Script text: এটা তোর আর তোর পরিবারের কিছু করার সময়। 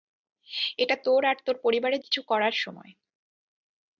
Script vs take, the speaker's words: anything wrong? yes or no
no